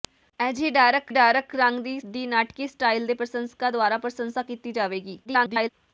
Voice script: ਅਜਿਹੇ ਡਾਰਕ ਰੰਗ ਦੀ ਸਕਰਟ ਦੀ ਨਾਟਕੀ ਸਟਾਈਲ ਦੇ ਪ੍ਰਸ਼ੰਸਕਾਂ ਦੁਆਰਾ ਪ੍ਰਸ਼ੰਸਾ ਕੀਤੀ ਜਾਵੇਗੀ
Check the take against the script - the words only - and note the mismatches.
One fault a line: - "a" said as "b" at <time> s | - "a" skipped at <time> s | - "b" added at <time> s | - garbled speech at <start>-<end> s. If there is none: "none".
- "ਡਾਰਕ" added at 1.1 s
- "ਸਕਰਟ" skipped at 2.0 s
- garbled speech at 5.2-5.7 s